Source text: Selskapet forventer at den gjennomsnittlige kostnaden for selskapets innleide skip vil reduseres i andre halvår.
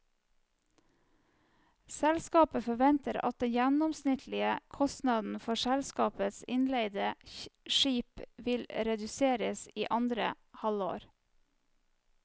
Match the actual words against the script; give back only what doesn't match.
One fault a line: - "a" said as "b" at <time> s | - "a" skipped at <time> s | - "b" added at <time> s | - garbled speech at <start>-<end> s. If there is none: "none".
none